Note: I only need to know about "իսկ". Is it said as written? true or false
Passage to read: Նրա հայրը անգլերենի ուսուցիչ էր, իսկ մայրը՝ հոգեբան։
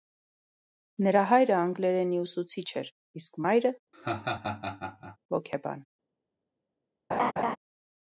true